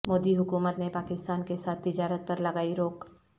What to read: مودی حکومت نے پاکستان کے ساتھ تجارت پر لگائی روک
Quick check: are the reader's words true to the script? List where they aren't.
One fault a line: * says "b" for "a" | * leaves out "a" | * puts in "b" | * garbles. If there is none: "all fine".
all fine